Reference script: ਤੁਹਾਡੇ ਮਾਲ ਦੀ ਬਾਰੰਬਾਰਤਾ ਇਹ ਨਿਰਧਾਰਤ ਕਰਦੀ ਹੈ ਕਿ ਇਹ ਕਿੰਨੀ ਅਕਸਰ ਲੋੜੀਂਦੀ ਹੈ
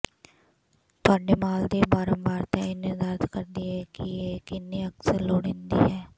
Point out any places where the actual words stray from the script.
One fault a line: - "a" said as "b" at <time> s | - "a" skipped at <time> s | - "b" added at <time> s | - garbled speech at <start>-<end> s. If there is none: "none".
none